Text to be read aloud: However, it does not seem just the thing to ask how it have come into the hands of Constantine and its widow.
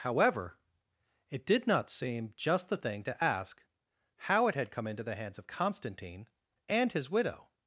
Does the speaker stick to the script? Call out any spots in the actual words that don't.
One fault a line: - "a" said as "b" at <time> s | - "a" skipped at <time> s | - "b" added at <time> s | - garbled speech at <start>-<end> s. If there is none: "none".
- "does" said as "did" at 1.4 s
- "have" said as "had" at 4.5 s
- "its" said as "his" at 6.9 s